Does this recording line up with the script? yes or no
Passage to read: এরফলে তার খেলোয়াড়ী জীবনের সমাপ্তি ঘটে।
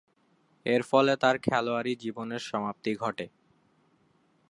yes